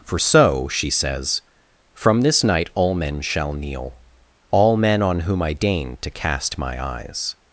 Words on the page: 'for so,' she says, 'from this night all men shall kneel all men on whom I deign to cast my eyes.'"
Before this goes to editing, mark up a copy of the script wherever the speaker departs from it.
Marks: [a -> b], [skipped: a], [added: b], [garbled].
'for so,' she says, 'from this night all men shall kneel all men on whom I deign to cast my eyes.'"